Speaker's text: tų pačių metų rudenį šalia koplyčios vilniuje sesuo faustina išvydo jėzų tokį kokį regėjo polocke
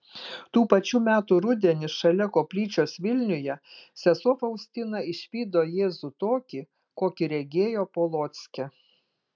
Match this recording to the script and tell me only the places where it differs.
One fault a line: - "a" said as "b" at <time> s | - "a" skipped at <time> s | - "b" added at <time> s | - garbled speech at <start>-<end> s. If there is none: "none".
none